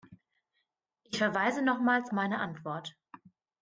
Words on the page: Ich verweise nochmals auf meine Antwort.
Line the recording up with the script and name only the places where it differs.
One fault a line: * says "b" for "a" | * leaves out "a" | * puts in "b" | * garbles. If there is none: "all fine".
* leaves out "auf"